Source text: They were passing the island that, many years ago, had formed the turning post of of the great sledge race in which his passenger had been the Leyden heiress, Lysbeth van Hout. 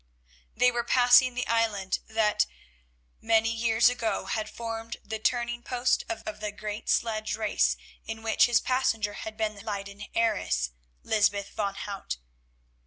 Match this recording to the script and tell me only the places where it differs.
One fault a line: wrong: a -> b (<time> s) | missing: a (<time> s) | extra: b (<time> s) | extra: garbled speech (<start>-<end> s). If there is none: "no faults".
no faults